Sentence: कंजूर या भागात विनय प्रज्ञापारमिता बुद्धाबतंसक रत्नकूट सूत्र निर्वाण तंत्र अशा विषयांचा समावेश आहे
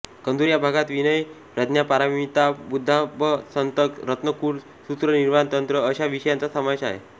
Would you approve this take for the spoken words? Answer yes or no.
yes